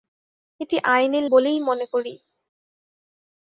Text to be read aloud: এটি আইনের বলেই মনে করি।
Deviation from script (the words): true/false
false